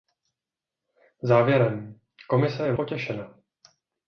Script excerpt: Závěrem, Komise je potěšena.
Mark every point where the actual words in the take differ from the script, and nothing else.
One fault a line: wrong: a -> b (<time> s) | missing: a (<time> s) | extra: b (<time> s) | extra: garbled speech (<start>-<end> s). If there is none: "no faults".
no faults